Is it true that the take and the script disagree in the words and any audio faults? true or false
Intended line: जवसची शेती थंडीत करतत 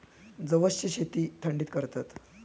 false